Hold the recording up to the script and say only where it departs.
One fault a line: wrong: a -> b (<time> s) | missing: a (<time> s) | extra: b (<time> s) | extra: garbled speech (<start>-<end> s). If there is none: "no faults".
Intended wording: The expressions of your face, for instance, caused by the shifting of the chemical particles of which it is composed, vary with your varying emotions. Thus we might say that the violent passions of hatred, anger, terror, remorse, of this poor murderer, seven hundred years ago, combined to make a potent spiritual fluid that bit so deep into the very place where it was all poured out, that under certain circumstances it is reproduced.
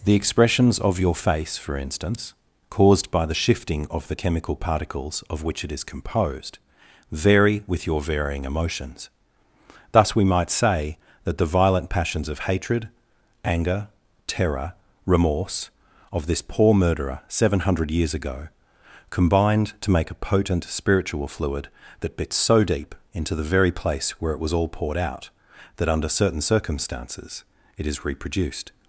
no faults